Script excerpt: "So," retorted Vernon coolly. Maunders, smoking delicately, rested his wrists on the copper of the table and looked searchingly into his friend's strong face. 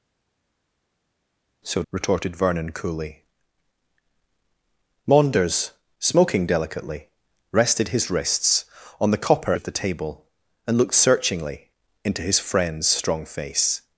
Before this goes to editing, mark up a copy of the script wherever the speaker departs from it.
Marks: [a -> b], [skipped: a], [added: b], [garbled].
"So," retorted Vernon coolly. Maunders, smoking delicately, rested his wrists on the copper of the table and looked searchingly into his friend's strong face.